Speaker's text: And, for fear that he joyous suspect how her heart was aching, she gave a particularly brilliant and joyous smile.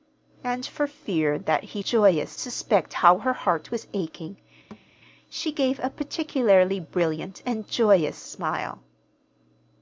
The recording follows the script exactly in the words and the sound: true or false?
false